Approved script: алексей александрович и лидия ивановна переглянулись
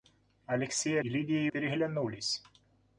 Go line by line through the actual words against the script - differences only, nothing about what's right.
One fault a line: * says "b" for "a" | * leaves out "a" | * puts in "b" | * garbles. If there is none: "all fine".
* leaves out "александрович"
* leaves out "ивановна"